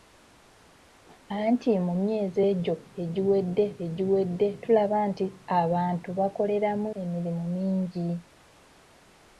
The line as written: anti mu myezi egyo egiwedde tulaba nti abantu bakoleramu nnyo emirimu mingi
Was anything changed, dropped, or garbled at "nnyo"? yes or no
yes